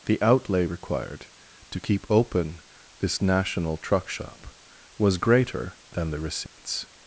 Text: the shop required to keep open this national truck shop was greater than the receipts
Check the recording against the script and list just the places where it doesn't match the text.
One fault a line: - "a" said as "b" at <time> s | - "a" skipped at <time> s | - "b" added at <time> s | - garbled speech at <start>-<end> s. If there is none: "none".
- "shop" said as "outlay" at 0.2 s